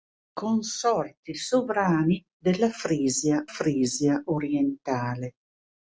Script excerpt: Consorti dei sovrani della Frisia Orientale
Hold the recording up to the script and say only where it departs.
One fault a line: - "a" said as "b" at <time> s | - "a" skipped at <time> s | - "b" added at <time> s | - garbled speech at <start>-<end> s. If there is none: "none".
- "dei" skipped at 1.3 s
- "Frisia" added at 3.5 s